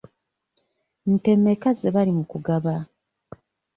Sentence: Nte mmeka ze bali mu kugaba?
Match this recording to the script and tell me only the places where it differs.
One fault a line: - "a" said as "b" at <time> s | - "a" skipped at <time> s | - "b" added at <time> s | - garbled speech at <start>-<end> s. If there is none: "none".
none